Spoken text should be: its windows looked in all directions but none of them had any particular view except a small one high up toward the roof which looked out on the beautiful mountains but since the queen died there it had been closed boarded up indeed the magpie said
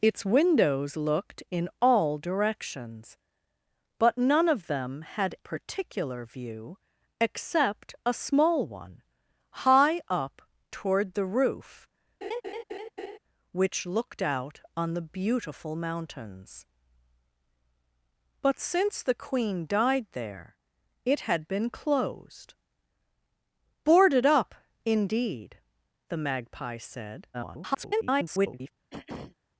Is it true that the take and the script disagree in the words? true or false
true